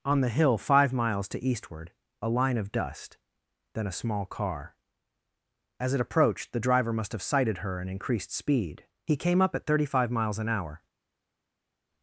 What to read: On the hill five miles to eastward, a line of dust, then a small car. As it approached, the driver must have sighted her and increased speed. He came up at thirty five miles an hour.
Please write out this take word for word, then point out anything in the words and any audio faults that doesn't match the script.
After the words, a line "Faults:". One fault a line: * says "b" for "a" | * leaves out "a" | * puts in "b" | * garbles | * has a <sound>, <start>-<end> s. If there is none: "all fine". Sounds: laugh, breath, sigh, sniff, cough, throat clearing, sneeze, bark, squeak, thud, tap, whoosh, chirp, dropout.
On the hill five miles to eastward, a line of dust, then a small car. As it approached, the driver must have sighted her and increased speed. He came up at thirty five miles an hour.
Faults:
all fine